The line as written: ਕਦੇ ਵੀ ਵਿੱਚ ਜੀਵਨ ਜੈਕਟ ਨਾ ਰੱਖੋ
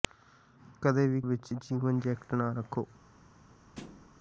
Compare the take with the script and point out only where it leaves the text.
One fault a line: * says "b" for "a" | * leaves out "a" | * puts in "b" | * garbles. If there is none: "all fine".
all fine